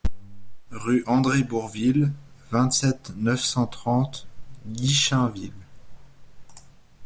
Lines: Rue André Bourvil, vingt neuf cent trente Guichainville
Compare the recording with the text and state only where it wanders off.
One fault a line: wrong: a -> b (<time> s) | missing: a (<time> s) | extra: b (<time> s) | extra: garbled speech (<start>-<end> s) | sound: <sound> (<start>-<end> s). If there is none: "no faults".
extra: sept (2.7 s)